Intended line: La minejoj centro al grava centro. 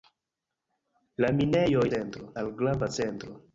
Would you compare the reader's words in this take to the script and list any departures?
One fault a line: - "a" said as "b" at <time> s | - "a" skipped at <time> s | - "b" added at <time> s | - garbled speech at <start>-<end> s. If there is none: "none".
none